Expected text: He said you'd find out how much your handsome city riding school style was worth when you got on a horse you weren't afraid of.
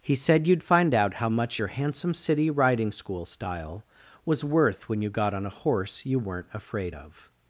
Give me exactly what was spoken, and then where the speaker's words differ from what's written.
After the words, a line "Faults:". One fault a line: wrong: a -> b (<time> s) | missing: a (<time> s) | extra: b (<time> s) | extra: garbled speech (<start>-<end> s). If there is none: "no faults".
He said you'd find out how much your handsome city riding school style was worth when you got on a horse you weren't afraid of.
Faults:
no faults